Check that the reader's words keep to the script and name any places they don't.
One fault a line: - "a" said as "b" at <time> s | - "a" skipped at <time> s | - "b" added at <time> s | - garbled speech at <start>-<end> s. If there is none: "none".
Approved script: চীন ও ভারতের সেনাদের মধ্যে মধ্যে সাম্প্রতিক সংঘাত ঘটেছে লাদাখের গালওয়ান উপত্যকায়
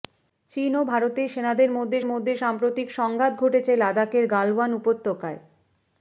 none